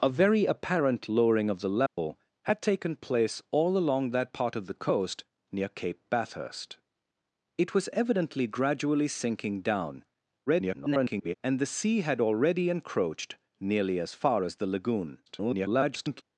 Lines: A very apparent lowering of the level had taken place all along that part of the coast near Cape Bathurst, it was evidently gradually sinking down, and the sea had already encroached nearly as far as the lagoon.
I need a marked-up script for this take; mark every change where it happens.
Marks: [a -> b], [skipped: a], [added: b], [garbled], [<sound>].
A very apparent lowering of the level [dropout] had taken place all along that part of the coast near Cape Bathurst, it was evidently gradually sinking down, [garbled] and the sea had already encroached nearly as far as the lagoon. [garbled]